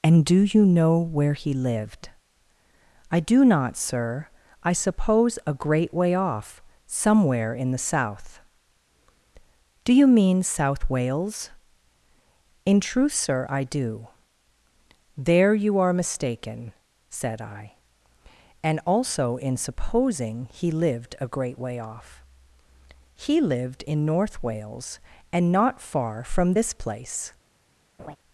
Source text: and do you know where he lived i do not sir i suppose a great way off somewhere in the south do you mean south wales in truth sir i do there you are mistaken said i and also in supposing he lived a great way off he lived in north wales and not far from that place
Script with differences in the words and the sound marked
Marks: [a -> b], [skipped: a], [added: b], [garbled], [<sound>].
and do you know where he lived i do not sir i suppose a great way off somewhere in the south do you mean south wales in truth sir i do there you are mistaken said i and also in supposing he lived a great way off he lived in north wales and not far from [that -> this] place [laugh]